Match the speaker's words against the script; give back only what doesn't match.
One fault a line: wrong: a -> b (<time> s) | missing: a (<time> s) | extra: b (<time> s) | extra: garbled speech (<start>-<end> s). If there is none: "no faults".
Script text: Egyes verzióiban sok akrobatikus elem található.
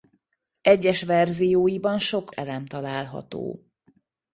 missing: akrobatikus (2.3 s)